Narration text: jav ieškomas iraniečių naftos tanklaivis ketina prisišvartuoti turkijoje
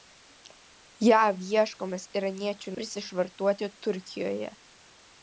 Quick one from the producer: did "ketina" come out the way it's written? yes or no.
no